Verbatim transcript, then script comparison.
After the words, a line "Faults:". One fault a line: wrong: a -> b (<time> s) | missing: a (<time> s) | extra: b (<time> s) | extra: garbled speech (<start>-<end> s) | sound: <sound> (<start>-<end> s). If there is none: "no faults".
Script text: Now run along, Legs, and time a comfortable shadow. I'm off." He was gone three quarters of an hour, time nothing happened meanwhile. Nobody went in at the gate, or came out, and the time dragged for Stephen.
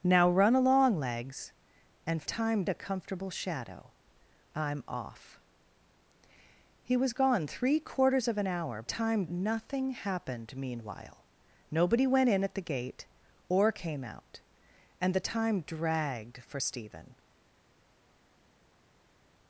Now run along, Legs, and time a comfortable shadow. I'm off." He was gone three quarters of an hour, time nothing happened meanwhile. Nobody went in at the gate, or came out, and the time dragged for Stephen.
Faults:
no faults